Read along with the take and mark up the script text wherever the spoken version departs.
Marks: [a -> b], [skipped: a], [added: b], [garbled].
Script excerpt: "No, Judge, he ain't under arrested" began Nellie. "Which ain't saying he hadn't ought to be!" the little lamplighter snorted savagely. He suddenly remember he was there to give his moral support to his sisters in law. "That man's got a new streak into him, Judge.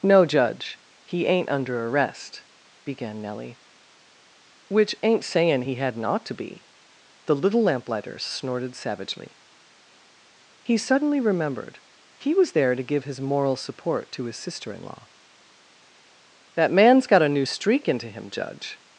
"No, Judge, he ain't under [arrested" -> arrest] began Nellie. "Which ain't saying he hadn't ought to be!" the little lamplighter snorted savagely. He suddenly [remember -> remembered] he was there to give his moral support to his [sisters -> sister] in law. "That man's got a new streak into him, Judge.